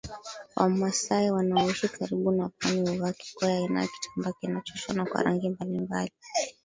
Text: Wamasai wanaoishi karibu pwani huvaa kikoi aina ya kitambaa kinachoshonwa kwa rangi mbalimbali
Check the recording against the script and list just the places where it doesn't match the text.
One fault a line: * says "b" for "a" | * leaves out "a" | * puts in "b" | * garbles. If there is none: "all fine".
* puts in "na"